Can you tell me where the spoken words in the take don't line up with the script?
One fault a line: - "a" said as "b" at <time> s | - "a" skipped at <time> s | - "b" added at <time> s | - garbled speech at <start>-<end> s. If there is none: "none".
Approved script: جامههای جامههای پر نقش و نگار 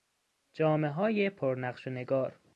- "جامههای" skipped at 1.3 s